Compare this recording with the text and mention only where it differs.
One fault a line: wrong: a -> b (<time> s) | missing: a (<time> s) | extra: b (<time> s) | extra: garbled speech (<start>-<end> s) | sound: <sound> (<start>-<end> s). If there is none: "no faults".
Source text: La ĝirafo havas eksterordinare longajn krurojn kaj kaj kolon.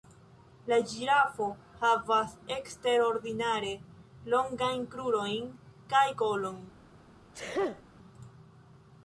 missing: kaj (6.0 s)
sound: sneeze (7.3-7.8 s)